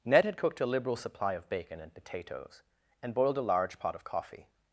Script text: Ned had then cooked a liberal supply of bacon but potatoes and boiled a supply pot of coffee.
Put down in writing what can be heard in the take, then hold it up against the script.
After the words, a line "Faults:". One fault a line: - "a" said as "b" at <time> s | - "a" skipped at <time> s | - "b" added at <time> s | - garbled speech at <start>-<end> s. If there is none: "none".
Ned had cooked a liberal supply of bacon and potatoes and boiled a large pot of coffee.
Faults:
- "then" skipped at 0.3 s
- "but" said as "and" at 1.8 s
- "supply" said as "large" at 3.5 s